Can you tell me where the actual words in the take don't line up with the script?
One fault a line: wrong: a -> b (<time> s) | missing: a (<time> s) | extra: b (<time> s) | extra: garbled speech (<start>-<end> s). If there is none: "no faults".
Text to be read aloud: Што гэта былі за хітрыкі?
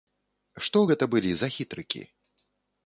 no faults